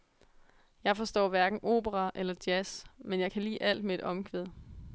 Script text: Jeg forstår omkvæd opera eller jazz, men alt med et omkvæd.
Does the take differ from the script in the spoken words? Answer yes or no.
yes